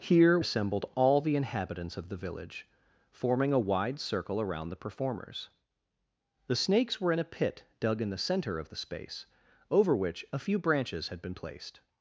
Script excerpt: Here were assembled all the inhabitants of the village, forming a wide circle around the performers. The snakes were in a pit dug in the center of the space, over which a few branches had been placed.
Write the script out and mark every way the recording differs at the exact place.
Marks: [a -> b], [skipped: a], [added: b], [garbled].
Here [skipped: were] assembled all the inhabitants of the village, forming a wide circle around the performers. The snakes were in a pit dug in the center of the space, over which a few branches had been placed.